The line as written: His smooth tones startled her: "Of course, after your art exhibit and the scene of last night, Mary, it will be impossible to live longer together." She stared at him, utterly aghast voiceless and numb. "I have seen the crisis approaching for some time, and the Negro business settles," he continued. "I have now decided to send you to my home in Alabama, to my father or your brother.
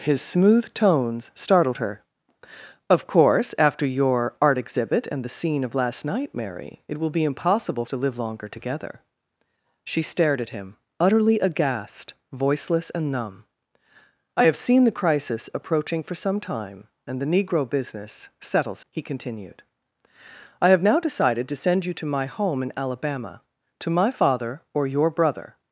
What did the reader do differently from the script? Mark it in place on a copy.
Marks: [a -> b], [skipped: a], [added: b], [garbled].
His smooth tones startled her: "Of course, after your art exhibit and the scene of last night, Mary, it will be impossible to live longer together." She stared at him, utterly aghast voiceless and numb. "I have seen the crisis approaching for some time, and the Negro business settles," he continued. "I have now decided to send you to my home in Alabama, to my father or your brother.